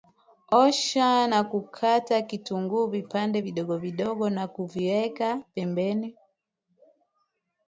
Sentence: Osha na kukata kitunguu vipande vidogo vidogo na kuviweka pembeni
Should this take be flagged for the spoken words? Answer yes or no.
no